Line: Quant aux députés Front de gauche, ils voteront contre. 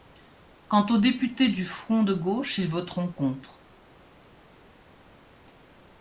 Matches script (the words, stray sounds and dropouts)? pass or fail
fail